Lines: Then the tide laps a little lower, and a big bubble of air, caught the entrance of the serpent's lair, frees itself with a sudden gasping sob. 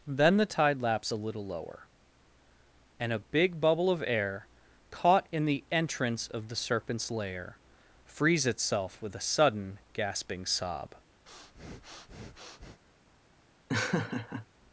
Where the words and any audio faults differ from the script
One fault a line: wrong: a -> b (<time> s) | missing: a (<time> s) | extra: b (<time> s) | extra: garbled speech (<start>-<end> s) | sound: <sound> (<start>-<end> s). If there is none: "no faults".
extra: in (5.3 s)
sound: breath (11.3-12.8 s)
sound: laugh (13.7-14.5 s)